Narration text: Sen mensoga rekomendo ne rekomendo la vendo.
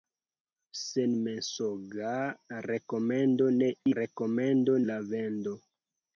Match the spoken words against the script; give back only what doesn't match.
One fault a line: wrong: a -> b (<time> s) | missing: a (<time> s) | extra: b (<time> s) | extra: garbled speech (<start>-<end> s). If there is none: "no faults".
no faults